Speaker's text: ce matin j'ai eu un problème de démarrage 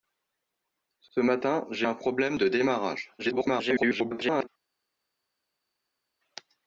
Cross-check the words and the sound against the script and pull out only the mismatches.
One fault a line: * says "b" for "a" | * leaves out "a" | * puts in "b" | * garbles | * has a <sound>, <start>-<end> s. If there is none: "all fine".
* puts in "ce"
* leaves out "eu"
* garbles